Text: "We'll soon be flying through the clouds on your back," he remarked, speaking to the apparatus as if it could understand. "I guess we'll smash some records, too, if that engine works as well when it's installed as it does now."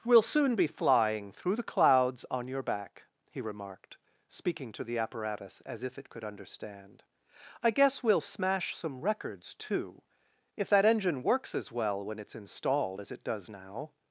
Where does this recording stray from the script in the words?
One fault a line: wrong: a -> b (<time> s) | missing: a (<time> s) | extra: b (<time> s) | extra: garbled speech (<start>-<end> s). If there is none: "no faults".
no faults